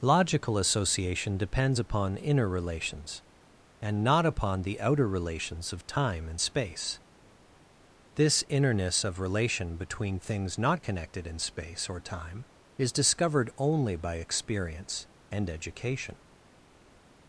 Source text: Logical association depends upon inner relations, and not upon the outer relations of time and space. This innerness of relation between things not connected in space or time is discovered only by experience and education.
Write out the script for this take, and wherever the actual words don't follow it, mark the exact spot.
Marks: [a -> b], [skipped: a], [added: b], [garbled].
Logical association depends upon inner relations, and not upon the outer relations of time and space. This innerness of relation between things not connected in space or time is discovered only by experience and education.